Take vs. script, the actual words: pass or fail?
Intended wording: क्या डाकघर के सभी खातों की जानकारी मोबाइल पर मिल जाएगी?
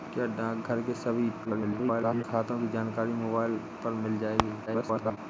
fail